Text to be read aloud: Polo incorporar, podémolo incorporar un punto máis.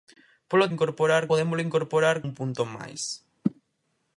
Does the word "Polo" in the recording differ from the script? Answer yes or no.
no